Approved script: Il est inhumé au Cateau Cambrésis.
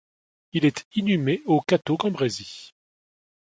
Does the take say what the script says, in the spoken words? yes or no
yes